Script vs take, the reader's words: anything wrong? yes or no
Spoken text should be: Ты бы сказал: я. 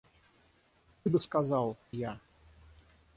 no